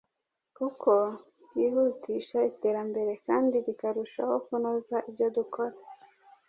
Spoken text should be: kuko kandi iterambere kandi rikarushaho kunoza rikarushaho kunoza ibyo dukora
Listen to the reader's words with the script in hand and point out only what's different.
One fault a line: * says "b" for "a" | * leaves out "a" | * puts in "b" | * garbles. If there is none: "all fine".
* says "ryihutisha" for "kandi"
* leaves out "rikarushaho kunoza"